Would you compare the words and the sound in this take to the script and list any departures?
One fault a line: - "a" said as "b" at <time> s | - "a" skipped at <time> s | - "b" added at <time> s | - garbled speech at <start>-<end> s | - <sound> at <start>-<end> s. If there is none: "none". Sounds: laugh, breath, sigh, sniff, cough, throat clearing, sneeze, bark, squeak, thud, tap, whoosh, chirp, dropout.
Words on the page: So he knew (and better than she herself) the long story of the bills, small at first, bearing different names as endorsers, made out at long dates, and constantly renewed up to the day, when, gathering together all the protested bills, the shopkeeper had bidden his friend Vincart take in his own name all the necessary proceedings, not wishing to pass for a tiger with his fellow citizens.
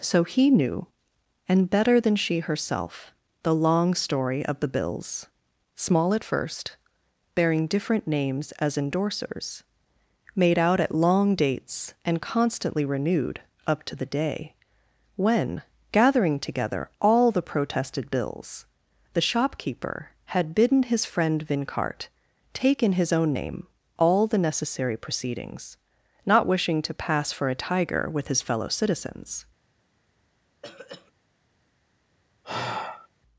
- throat clearing at 30.6-31.1 s
- sigh at 32.4-33.1 s